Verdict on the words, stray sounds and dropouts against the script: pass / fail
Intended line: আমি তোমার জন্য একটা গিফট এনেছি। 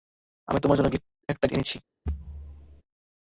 fail